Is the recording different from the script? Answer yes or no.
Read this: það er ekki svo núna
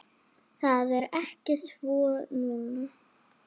no